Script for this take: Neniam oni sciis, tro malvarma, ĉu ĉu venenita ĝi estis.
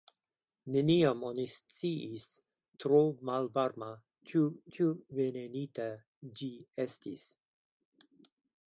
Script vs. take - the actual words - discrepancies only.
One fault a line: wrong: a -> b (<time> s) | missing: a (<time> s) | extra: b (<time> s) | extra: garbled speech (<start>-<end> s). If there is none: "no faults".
no faults